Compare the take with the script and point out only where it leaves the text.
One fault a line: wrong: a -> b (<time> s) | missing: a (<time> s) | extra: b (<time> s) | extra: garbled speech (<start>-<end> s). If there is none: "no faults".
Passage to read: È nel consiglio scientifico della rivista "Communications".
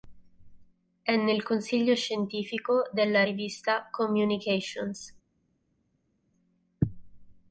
no faults